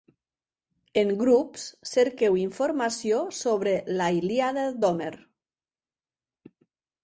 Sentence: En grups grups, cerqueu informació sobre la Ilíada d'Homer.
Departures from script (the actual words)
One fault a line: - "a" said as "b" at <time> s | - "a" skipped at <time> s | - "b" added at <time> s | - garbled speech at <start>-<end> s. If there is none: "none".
- "grups" skipped at 1.6 s